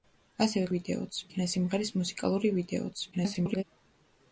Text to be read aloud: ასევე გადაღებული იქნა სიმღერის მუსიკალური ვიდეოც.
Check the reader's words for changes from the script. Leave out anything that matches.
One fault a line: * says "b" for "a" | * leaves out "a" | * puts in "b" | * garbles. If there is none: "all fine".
* says "ვიდეოც" for "გადაღებული"
* garbles